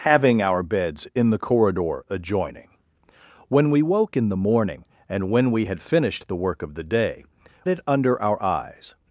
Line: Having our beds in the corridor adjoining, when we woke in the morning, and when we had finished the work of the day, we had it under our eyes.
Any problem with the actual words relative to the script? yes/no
yes